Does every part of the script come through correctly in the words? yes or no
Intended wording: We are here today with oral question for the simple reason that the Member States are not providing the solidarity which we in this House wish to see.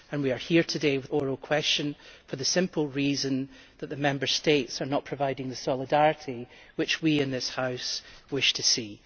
yes